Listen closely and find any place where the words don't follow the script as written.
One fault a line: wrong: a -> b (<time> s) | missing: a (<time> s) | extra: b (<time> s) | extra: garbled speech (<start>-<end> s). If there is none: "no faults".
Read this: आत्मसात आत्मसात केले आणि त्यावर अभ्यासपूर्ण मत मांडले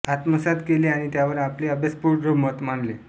missing: आत्मसात (0.6 s)
extra: आपले (1.4 s)